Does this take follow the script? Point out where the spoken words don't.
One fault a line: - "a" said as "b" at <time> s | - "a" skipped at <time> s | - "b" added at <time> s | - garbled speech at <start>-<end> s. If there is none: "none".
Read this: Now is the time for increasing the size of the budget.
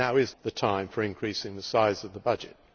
none